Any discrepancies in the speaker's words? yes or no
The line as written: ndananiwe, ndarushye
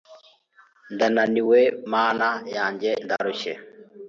yes